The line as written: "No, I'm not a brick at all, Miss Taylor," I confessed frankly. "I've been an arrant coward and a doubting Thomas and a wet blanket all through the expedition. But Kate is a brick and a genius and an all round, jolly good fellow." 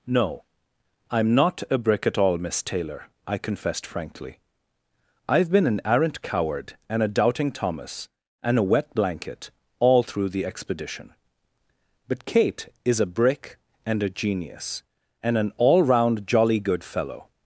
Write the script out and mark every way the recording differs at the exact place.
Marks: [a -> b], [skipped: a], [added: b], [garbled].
"No, I'm not a brick at all, Miss Taylor," I confessed frankly. "I've been an arrant coward and a doubting Thomas and a wet blanket all through the expedition. But Kate is a brick and a genius and an all round, jolly good fellow."